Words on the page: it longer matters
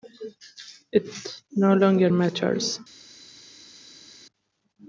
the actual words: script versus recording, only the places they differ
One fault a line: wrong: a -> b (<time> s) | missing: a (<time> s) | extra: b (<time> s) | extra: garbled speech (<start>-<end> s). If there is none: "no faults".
extra: no (1.6 s)